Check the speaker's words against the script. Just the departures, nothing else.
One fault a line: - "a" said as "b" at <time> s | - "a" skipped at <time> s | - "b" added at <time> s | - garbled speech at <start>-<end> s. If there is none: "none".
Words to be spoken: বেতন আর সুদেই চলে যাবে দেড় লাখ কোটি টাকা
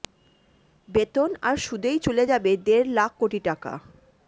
none